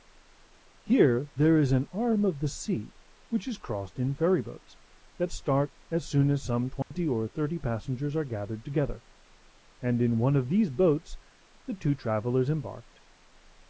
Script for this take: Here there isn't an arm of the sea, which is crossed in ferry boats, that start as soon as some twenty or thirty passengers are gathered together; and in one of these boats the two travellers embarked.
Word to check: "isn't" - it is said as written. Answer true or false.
false